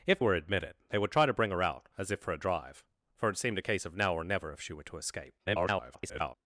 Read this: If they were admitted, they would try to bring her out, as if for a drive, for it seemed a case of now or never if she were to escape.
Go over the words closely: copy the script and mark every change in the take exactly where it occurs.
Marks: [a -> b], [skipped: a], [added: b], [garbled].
If [skipped: they] were admitted, they would try to bring her out, as if for a drive, for it seemed a case of now or never if she were to escape. [garbled]